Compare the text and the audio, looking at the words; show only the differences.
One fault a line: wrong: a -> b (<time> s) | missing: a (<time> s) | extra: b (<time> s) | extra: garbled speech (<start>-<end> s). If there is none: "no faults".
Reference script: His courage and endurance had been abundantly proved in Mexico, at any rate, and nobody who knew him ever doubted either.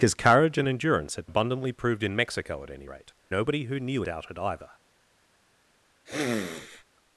missing: been (1.3 s)
missing: and (3.1 s)
missing: him ever (4.0 s)